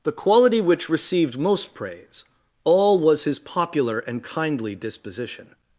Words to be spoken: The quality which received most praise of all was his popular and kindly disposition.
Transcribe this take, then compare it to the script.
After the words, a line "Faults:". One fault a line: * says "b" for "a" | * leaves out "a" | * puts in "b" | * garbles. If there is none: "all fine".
The quality which received most praise all was his popular and kindly disposition.
Faults:
* leaves out "of"